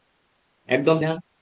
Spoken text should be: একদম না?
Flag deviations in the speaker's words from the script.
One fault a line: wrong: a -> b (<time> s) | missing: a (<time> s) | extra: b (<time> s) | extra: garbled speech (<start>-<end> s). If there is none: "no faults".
no faults